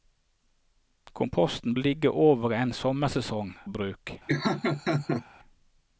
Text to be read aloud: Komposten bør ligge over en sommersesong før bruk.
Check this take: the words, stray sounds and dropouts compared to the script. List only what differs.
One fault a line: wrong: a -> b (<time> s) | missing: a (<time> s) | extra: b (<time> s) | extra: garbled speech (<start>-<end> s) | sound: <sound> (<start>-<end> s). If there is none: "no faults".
missing: bør (1.8 s)
missing: før (3.5 s)
sound: laugh (4.3-5.2 s)